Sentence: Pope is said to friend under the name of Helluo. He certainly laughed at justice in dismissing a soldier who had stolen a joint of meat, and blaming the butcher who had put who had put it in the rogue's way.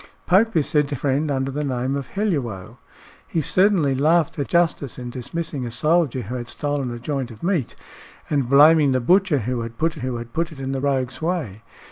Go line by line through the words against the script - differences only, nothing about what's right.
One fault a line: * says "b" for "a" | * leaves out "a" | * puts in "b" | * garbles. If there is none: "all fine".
all fine